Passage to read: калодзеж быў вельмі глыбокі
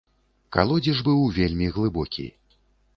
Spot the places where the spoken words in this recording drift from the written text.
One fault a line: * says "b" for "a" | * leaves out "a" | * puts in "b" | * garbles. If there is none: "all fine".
all fine